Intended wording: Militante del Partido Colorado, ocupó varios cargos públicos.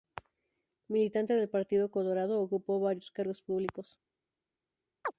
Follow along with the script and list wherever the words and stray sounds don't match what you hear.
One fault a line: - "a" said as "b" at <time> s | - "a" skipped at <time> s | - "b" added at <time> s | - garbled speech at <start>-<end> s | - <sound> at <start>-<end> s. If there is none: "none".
- chirp at 5.0-5.1 s